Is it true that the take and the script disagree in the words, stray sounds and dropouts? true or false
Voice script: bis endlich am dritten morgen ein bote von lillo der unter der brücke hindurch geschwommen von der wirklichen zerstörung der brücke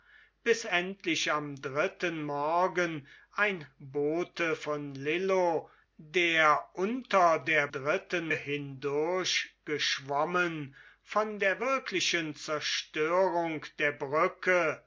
true